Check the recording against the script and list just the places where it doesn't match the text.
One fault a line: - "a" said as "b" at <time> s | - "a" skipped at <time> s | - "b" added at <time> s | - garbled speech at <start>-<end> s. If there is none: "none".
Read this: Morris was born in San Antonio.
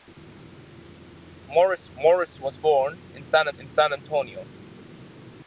- "morris" added at 1.9 s
- "in San" added at 3.6 s